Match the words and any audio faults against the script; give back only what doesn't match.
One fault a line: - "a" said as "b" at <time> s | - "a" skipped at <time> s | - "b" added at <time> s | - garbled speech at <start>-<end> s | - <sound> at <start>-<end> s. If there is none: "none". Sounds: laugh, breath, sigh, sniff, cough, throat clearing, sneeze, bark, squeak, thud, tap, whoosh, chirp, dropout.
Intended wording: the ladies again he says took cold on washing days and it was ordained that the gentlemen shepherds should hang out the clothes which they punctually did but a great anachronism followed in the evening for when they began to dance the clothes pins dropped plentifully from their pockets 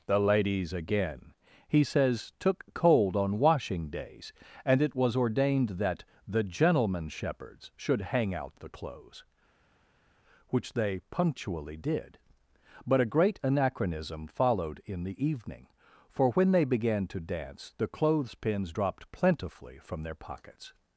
none